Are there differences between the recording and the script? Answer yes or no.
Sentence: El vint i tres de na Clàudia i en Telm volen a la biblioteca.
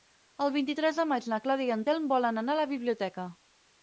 yes